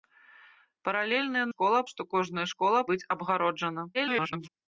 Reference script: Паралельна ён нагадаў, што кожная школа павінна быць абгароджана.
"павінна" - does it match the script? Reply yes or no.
no